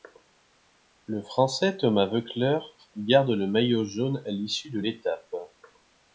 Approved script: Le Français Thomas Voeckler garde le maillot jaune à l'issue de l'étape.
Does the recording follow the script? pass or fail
pass